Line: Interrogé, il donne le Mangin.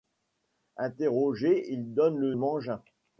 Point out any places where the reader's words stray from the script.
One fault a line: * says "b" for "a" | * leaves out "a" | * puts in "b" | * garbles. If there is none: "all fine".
all fine